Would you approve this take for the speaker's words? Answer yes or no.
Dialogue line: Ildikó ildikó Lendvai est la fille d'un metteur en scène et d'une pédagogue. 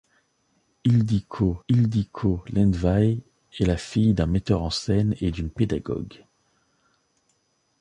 yes